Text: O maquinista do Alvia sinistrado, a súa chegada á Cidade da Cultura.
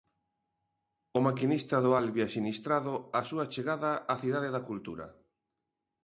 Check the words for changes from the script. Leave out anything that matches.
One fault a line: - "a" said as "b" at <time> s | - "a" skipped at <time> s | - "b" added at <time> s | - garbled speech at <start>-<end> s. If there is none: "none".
none